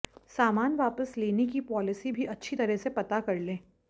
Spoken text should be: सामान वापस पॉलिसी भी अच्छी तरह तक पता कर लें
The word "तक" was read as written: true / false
false